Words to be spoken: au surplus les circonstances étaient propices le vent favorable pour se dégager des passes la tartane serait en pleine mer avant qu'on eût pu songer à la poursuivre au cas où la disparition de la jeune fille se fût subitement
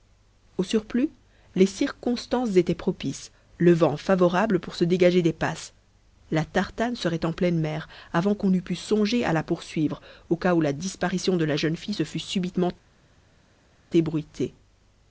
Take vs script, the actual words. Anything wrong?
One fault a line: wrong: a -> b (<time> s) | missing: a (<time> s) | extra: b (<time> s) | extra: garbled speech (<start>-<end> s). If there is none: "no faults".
no faults